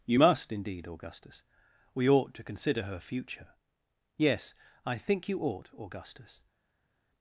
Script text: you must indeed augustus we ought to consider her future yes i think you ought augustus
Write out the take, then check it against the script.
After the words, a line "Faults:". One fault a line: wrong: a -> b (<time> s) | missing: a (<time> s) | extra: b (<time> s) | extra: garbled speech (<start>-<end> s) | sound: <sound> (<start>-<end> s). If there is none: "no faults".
you must indeed augustus we ought to consider her future yes i think you ought augustus
Faults:
no faults